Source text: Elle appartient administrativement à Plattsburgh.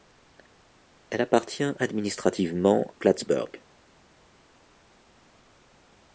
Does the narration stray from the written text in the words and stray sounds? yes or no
yes